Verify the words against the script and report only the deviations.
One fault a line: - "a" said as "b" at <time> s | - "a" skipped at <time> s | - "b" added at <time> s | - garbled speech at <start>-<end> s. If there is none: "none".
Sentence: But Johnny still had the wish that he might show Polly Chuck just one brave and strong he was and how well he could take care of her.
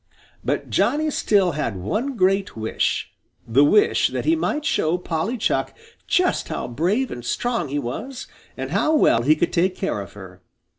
- "one great wish" added at 1.8 s
- "one" said as "how" at 6.5 s